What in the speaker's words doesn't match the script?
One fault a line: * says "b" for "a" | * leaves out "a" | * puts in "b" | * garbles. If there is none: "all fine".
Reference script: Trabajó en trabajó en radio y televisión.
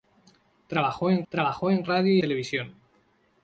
all fine